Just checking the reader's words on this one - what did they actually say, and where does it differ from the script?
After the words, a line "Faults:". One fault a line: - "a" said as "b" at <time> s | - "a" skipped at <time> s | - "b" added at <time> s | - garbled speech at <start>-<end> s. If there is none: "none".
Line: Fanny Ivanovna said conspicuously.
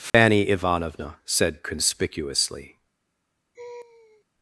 Fanny Ivanovna said conspicuously.
Faults:
none